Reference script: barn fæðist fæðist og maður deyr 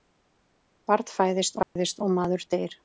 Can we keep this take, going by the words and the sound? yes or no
no